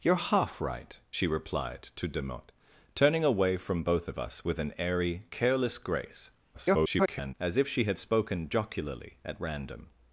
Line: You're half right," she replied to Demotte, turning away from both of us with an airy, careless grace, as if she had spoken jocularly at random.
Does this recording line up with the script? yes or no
no